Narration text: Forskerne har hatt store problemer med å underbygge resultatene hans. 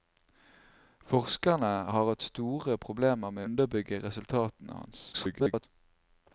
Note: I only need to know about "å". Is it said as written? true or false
false